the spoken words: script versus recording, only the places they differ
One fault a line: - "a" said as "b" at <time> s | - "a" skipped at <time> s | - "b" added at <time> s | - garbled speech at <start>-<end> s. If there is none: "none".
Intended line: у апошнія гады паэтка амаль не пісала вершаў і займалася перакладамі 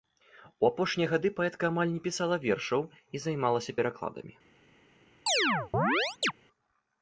none